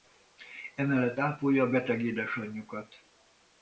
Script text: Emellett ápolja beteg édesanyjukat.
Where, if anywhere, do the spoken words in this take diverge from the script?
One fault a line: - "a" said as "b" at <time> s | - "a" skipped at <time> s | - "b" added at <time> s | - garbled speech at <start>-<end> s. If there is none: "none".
none